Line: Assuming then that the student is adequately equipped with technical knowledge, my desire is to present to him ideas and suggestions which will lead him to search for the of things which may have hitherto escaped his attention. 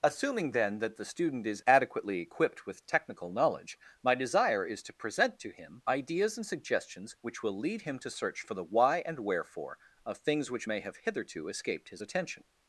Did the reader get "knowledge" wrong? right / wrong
right